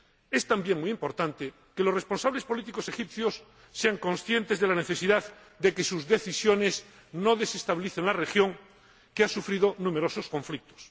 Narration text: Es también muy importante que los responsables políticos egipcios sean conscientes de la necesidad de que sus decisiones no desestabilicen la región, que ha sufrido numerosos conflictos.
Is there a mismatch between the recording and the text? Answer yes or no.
no